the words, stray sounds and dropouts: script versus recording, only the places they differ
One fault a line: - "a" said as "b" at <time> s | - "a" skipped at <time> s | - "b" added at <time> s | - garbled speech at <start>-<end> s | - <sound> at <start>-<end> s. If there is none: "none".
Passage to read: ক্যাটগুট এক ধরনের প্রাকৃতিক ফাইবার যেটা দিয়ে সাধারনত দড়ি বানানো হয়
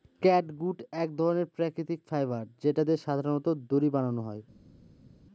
none